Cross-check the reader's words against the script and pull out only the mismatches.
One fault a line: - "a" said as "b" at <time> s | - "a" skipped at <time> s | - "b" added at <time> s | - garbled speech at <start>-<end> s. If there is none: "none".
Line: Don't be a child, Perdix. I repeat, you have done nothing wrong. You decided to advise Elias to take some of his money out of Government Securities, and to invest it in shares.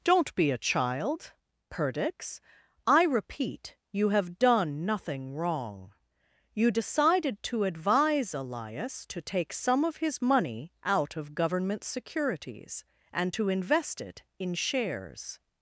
none